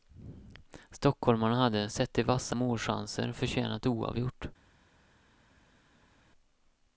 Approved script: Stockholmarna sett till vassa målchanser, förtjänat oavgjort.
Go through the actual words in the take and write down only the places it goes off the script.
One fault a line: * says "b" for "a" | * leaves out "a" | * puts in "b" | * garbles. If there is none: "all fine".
* puts in "hade"